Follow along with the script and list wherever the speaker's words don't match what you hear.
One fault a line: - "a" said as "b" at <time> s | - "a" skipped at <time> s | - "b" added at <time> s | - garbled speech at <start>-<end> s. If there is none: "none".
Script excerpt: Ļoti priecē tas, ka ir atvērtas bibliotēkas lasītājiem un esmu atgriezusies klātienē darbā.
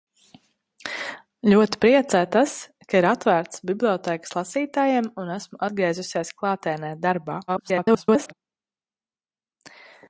- garbled speech at 7.5-8.3 s